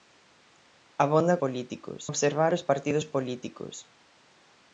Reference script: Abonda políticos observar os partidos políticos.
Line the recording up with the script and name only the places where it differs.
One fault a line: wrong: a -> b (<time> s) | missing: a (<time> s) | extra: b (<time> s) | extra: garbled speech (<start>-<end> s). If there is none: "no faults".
no faults